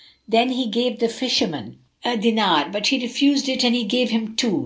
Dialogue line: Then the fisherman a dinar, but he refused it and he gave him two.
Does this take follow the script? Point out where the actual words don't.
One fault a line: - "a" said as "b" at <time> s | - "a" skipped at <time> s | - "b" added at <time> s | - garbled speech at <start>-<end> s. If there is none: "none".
- "he gave" added at 0.5 s